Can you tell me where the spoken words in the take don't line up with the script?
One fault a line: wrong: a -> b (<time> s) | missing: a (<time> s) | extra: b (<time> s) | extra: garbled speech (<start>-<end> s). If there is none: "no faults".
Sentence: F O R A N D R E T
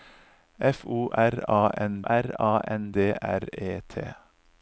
extra: R A N (2.1 s)